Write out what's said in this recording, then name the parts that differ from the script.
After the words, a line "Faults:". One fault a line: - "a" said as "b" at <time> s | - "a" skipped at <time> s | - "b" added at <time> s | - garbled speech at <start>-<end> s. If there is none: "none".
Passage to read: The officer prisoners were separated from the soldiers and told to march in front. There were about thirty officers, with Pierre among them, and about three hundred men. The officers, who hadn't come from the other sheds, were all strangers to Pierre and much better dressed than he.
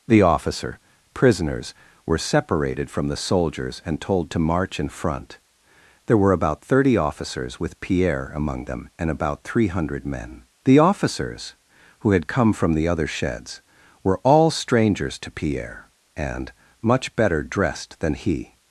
The officer prisoners were separated from the soldiers and told to march in front. There were about thirty officers, with Pierre among them, and about three hundred men. The officers, who had come from the other sheds, were all strangers to Pierre and much better dressed than he.
Faults:
- "hadn't" said as "had" at 12.1 s